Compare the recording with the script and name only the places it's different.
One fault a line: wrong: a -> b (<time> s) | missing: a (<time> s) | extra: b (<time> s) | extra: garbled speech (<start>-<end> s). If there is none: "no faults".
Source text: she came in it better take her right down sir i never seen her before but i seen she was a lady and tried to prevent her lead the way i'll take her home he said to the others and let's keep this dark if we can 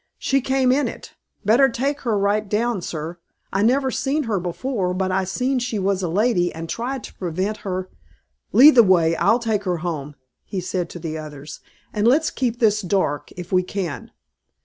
no faults